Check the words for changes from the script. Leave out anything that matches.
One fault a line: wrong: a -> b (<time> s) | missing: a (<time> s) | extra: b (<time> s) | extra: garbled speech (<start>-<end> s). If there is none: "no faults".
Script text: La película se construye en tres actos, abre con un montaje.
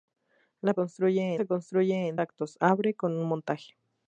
wrong: película -> construye (0.7 s)
missing: tres (2.2 s)